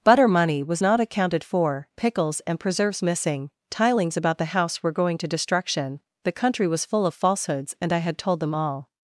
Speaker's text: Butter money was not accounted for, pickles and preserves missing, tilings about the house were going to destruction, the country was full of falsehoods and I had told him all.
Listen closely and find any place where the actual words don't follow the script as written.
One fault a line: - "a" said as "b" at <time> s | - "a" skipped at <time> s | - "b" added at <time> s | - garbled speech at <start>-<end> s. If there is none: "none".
- "him" said as "them" at 8.4 s